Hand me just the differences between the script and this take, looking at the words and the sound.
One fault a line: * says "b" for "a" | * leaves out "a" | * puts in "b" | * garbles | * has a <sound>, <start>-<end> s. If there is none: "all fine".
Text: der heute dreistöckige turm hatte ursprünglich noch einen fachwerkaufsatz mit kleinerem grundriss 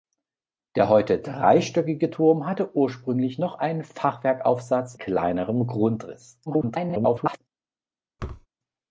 * leaves out "mit"
* garbles
* has a thud, 8.2-8.5 s